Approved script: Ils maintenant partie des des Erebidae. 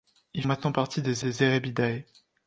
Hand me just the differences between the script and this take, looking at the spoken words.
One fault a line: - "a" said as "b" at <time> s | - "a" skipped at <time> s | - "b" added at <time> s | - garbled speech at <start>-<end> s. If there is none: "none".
none